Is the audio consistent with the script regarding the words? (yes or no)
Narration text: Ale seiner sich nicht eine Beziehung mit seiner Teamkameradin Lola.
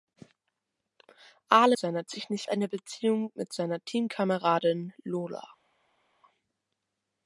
yes